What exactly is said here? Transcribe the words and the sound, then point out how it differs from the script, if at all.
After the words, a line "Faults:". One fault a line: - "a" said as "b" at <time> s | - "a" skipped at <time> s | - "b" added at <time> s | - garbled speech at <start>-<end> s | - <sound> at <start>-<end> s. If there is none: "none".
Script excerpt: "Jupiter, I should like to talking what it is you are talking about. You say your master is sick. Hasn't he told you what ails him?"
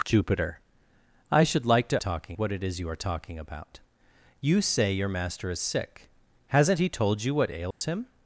"Jupiter, I should like to talking what it is you are talking about. You say your master is sick. Hasn't he told you what ails him?"
Faults:
- dropout at 7.7-7.8 s